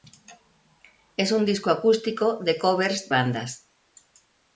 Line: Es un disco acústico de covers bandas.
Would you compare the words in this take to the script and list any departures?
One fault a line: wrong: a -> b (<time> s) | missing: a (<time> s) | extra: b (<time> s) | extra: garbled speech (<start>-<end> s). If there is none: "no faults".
no faults